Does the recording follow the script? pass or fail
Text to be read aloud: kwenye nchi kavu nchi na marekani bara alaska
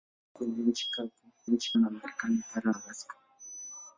pass